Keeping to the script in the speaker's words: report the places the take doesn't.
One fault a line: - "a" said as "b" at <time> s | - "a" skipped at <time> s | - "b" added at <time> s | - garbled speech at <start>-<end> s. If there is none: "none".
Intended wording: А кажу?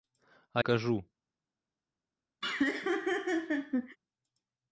none